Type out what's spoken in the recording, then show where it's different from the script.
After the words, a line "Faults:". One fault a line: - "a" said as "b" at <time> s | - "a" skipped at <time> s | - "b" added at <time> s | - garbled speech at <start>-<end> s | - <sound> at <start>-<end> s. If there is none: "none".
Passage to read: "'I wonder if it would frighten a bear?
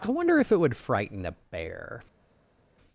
"'I wonder if it would frighten a bear?
Faults:
none